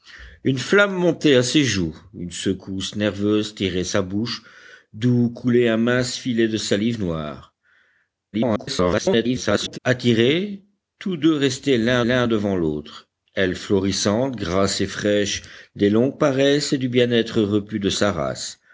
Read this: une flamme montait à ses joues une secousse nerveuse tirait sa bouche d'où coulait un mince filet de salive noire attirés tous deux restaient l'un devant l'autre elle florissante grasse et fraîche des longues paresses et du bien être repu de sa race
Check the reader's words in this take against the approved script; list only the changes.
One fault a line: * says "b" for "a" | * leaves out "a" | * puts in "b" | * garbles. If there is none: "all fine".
* garbles
* puts in "l'un"